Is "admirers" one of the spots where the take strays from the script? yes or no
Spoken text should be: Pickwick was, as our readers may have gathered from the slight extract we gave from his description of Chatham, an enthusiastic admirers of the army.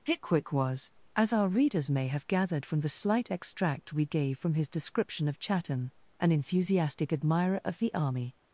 yes